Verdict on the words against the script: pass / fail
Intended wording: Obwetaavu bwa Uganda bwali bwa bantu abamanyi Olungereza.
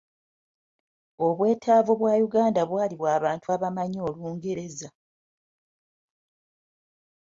pass